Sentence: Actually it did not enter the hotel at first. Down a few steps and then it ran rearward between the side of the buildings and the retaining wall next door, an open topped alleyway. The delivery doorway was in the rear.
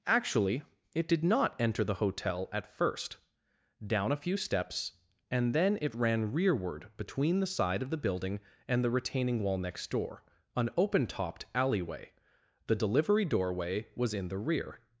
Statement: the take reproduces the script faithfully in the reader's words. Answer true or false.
false